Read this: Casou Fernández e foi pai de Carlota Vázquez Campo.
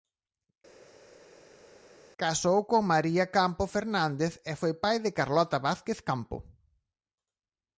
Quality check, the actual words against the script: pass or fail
fail